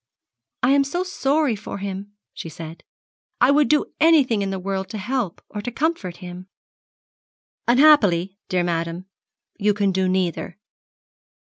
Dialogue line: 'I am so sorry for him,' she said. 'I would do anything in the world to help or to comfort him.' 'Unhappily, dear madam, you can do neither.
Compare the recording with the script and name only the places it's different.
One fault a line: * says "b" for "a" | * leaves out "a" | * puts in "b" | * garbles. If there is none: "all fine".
all fine